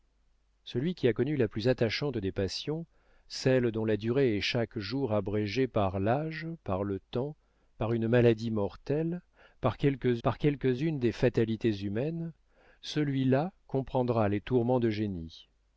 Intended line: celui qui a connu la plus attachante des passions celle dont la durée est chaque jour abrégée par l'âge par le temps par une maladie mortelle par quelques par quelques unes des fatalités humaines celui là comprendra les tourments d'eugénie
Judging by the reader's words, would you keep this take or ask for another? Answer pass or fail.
pass